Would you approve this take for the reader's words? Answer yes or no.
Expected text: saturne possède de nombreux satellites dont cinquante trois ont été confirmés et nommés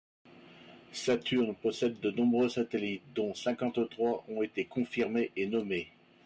yes